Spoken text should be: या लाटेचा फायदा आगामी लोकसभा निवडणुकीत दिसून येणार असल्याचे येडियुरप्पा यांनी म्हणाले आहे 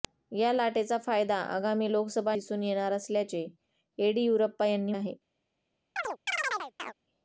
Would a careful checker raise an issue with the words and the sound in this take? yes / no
yes